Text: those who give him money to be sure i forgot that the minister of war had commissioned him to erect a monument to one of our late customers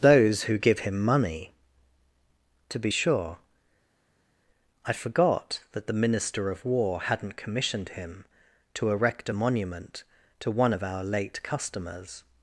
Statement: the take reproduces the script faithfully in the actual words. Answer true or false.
false